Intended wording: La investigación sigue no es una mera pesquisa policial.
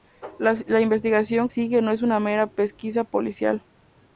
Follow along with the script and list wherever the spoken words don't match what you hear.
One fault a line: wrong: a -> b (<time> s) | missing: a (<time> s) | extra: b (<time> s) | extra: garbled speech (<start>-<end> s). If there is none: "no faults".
no faults